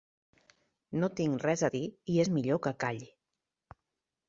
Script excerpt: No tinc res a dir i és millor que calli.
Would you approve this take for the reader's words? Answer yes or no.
yes